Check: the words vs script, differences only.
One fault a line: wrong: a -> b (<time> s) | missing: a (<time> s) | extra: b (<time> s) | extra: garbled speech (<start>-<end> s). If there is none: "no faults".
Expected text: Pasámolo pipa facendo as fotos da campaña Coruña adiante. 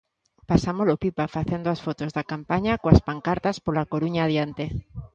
extra: coas pancartas pola (2.8 s)